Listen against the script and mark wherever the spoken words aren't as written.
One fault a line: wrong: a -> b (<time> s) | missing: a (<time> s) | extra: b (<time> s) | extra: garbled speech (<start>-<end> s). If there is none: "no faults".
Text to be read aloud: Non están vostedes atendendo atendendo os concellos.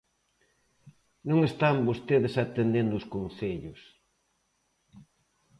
missing: atendendo (2.9 s)